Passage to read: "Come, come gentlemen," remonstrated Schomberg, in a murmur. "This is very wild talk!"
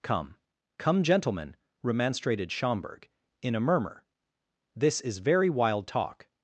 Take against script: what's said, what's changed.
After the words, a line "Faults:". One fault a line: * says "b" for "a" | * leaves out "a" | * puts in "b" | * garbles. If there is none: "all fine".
"Come, come gentlemen," remonstrated Schomberg, in a murmur. "This is very wild talk!"
Faults:
all fine